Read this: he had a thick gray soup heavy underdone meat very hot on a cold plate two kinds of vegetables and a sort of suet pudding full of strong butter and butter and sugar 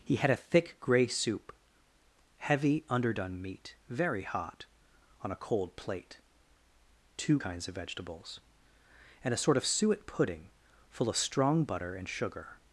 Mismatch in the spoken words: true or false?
true